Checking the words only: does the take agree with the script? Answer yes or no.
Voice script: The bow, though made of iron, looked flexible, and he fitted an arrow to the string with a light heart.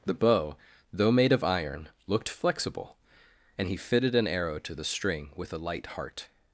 yes